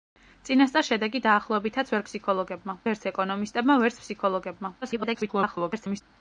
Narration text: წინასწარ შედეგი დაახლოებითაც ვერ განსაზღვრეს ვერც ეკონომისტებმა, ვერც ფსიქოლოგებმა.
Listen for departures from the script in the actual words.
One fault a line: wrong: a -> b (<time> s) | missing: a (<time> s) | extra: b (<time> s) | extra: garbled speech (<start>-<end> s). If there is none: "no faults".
wrong: განსაზღვრეს -> ფსიქოლოგებმა (2.1 s)
extra: garbled speech (4.8-6.0 s)